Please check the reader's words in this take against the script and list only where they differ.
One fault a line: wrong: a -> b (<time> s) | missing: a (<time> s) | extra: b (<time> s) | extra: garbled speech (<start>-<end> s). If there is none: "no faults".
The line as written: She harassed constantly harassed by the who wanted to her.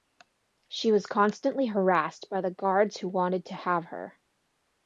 wrong: harassed -> was (0.9 s)
extra: guards (2.5 s)
extra: have (3.5 s)